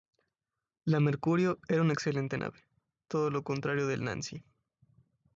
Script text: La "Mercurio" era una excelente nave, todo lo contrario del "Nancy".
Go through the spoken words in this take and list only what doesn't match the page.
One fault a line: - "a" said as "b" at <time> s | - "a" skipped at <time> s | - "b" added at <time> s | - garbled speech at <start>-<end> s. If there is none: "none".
none